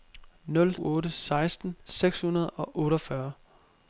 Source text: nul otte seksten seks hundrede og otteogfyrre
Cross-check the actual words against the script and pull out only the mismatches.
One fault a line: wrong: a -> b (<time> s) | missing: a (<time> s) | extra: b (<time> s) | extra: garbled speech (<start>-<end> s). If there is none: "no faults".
no faults